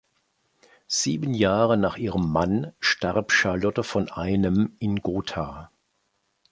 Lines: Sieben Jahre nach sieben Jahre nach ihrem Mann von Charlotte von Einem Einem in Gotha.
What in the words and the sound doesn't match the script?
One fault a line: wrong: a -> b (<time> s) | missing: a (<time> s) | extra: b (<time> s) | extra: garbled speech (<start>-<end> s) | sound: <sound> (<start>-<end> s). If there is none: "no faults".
missing: sieben Jahre nach (1.9 s)
wrong: von -> starb (2.8 s)
missing: Einem (4.7 s)